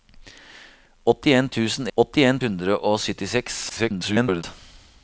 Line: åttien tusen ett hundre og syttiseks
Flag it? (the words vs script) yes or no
yes